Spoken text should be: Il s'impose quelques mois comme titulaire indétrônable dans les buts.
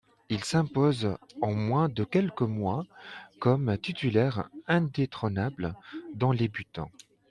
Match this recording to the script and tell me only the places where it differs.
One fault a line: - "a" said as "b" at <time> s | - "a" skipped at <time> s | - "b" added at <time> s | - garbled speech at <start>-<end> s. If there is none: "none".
- "en moins de" added at 1.4 s